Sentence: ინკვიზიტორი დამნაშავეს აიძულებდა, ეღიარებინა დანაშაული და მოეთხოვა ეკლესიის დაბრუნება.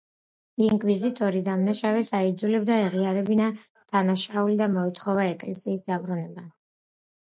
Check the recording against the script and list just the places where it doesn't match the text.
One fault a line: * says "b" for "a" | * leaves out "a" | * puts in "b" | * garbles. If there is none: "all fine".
all fine